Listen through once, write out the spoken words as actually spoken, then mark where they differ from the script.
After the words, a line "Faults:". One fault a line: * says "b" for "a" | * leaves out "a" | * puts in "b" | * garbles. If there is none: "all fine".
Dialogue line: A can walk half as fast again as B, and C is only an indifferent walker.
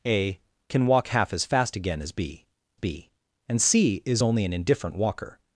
A can walk half as fast again as B B, and C is only an indifferent walker.
Faults:
* puts in "B"